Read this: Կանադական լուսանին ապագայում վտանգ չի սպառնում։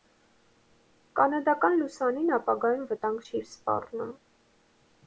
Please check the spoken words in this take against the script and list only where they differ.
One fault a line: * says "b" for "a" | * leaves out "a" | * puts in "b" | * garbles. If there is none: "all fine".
all fine